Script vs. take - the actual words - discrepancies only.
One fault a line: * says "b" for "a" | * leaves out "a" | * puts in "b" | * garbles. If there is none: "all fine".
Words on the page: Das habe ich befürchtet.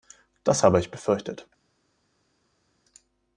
all fine